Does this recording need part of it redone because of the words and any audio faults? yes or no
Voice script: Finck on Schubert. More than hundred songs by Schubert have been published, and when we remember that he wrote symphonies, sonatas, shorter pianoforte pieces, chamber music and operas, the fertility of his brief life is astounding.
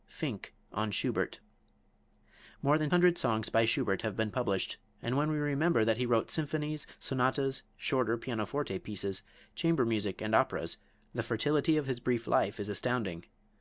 no